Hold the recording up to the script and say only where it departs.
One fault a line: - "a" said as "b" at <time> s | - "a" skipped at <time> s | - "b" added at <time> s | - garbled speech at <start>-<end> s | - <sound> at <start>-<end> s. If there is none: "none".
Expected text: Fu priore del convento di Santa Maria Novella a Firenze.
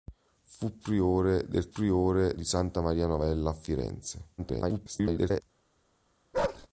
- "convento" said as "priore" at 1.7 s
- garbled speech at 4.4-5.4 s
- bark at 6.3-6.7 s